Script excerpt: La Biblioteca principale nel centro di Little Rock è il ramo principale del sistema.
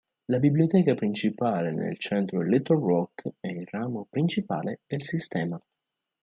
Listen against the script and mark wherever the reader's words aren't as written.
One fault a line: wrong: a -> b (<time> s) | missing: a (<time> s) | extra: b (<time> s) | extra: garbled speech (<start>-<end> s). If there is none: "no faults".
no faults